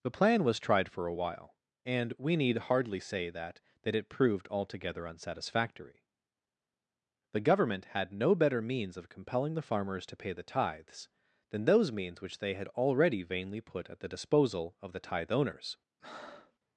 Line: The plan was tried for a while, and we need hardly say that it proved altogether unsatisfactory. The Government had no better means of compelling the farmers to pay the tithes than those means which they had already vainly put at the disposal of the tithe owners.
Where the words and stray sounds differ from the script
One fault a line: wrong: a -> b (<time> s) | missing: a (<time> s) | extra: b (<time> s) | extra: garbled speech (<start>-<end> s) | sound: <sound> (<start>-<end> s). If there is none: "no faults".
extra: that (3.8 s)
sound: breath (16.0-16.6 s)